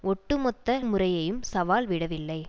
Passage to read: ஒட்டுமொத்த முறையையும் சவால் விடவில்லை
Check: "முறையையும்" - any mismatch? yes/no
no